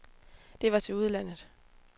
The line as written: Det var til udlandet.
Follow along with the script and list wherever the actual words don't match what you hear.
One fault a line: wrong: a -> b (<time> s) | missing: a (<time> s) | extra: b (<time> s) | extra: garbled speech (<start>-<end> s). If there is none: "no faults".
no faults